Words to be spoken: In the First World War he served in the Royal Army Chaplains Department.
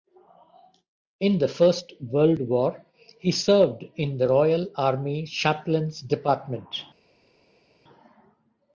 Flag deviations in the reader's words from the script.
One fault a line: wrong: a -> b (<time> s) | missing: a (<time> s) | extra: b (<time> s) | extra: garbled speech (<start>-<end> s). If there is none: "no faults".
no faults